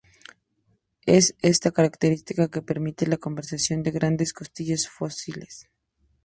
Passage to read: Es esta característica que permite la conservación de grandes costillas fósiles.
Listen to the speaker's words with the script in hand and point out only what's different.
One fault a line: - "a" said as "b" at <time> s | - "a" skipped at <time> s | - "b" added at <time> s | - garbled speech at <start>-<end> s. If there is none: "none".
none